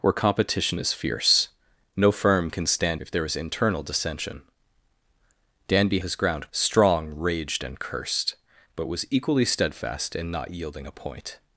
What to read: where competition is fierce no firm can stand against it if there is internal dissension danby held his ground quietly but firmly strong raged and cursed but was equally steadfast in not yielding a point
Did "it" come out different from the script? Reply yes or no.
yes